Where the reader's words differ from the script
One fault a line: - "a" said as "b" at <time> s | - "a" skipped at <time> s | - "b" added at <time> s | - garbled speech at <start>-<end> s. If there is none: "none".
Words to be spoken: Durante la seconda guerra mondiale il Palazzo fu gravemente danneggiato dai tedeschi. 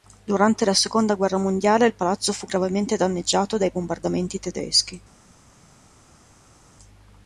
- "bombardamenti" added at 3.7 s